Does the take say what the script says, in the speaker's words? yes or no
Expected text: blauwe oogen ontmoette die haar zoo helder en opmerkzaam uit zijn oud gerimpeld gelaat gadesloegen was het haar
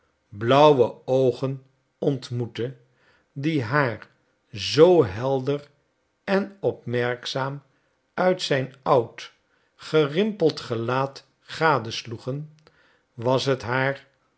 yes